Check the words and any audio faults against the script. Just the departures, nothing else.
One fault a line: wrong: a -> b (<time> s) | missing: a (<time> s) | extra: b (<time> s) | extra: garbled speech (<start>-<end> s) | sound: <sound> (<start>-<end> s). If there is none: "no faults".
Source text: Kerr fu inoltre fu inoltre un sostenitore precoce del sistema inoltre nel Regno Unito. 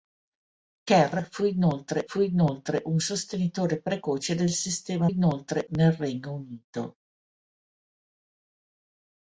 no faults